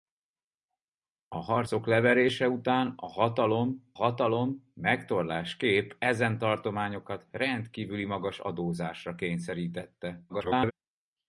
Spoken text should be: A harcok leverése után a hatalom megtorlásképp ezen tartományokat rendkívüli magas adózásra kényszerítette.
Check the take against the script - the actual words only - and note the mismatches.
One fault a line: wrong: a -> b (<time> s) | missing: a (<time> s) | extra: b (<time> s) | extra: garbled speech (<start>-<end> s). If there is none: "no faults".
extra: hatalom (3.9 s)
extra: garbled speech (10.3-10.7 s)